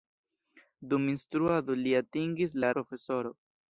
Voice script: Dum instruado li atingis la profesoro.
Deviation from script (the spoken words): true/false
false